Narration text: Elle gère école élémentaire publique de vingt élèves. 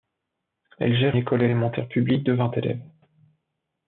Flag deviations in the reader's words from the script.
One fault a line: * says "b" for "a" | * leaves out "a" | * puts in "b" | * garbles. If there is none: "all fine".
all fine